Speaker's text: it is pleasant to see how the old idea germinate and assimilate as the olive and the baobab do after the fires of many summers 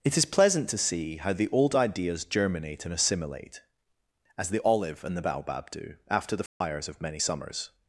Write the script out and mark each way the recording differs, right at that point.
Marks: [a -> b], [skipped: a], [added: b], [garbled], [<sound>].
it is pleasant to see how the old [idea -> ideas] germinate and assimilate as the olive and the baobab do after the fires [dropout] of many summers